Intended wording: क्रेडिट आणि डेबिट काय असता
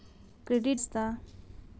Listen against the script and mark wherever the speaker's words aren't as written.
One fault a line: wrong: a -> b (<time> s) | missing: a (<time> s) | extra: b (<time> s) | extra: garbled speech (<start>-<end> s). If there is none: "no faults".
missing: आणि डेबिट काय (0.8 s)